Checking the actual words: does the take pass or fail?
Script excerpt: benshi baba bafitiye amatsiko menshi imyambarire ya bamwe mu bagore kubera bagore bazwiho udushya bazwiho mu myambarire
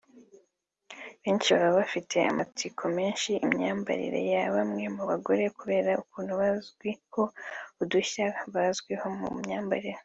fail